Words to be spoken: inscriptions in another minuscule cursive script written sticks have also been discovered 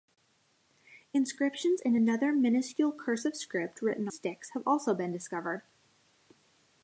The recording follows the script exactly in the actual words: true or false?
true